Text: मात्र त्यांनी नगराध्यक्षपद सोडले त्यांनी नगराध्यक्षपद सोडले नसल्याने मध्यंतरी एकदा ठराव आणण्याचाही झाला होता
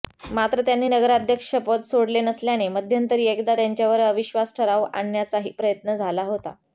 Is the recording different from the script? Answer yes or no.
yes